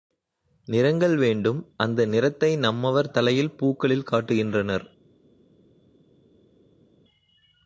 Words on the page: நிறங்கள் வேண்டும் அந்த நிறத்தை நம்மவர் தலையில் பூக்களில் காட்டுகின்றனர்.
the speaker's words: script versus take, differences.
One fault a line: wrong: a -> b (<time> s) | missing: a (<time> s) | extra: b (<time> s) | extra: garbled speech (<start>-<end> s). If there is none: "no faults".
no faults